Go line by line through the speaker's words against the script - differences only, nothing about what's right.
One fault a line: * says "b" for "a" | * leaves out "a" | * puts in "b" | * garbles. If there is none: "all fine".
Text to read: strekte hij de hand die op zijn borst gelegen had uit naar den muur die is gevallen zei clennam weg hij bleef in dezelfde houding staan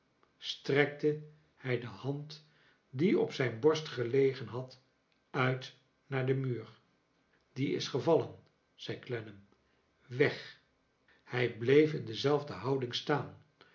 all fine